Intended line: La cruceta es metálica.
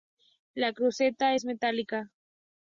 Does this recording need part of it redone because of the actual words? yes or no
no